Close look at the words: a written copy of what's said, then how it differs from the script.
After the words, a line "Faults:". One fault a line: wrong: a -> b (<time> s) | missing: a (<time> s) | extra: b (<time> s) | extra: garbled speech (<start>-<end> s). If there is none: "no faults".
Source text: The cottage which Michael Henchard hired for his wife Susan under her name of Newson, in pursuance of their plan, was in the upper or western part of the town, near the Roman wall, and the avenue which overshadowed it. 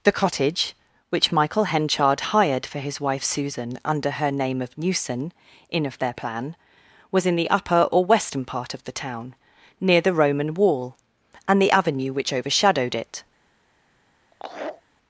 The cottage which Michael Henchard hired for his wife Susan under her name of Newson, in of their plan, was in the upper or western part of the town, near the Roman wall, and the avenue which overshadowed it.
Faults:
missing: pursuance (5.8 s)